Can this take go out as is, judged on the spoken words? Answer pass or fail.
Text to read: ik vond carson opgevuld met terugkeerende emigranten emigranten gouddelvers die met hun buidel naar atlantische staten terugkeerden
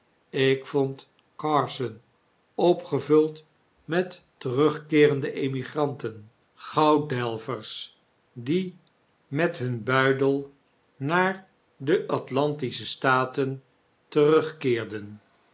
fail